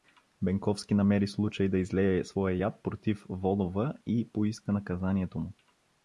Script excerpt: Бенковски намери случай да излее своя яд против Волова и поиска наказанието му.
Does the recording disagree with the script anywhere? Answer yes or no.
no